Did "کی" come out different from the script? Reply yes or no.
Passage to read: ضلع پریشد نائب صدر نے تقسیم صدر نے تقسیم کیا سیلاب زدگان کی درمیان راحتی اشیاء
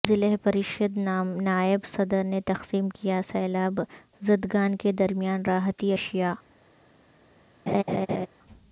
yes